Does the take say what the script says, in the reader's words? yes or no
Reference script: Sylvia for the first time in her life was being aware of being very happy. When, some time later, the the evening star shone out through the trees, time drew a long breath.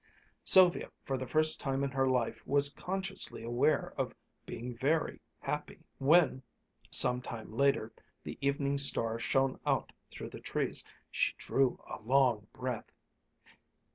no